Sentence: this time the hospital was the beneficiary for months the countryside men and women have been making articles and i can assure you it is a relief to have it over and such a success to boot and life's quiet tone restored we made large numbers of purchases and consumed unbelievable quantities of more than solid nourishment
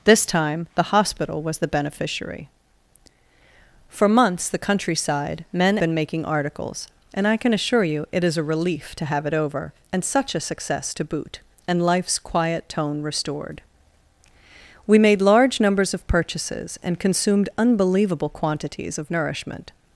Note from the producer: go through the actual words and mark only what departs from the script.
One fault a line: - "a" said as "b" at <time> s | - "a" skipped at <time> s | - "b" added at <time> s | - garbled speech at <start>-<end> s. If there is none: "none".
- "and women have" skipped at 5.8 s
- "more than solid" skipped at 19.1 s